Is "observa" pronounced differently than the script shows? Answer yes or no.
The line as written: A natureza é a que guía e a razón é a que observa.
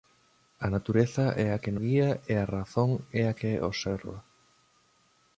no